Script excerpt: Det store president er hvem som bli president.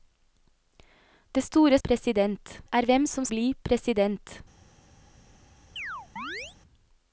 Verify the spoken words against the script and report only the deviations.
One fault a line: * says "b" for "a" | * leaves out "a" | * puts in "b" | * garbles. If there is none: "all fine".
all fine